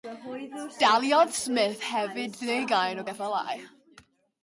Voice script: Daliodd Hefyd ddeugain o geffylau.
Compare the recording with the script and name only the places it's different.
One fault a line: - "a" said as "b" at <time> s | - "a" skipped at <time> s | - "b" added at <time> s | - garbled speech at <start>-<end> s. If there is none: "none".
- "Smith" added at 1.4 s